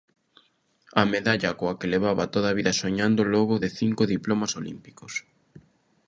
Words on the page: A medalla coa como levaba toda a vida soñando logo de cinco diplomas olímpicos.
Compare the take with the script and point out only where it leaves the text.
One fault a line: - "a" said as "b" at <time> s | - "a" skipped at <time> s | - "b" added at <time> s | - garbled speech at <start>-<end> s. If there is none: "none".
- "como" said as "que" at 1.8 s